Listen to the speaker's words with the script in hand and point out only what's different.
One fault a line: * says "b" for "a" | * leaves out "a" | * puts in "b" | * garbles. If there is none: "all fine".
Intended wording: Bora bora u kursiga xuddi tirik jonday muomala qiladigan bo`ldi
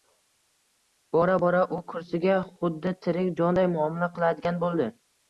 all fine